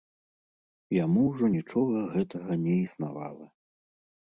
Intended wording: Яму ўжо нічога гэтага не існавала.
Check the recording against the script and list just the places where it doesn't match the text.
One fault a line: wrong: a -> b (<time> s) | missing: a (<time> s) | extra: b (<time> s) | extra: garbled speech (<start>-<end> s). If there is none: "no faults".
no faults